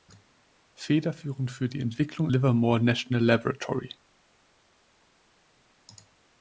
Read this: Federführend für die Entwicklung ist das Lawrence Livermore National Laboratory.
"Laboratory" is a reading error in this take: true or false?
false